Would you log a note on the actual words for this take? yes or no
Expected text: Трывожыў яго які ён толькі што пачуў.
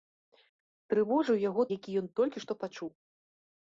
no